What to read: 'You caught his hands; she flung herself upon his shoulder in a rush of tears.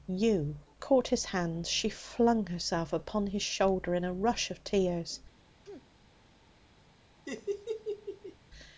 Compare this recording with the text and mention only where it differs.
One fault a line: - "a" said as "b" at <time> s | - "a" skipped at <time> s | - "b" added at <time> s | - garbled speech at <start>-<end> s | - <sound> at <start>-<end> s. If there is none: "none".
- sneeze at 5.7-5.9 s
- laugh at 7.3-8.4 s